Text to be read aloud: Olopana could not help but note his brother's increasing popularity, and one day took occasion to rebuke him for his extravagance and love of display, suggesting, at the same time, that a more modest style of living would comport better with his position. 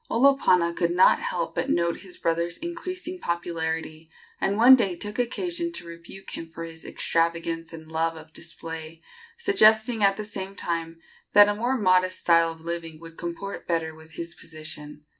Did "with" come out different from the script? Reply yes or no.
no